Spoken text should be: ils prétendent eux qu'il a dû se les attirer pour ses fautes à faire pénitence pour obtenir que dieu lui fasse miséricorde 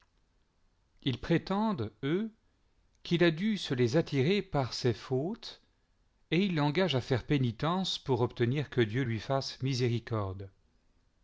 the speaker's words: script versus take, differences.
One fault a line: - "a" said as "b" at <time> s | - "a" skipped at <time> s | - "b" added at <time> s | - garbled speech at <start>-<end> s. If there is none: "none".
- "pour" said as "par" at 4.4 s
- "et ils l'engagent" added at 6.3 s